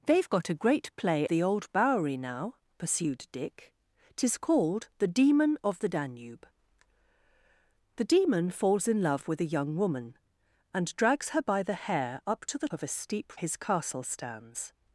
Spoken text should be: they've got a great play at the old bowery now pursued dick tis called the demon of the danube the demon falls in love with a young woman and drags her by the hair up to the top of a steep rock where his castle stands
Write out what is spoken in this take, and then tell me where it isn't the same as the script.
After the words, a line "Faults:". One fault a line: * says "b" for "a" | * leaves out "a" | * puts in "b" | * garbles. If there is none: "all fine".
they've got a great play the old bowery now pursued dick tis called the demon of the danube the demon falls in love with a young woman and drags her by the hair up to the of a steep his castle stands
Faults:
* leaves out "at"
* leaves out "top"
* leaves out "rock where"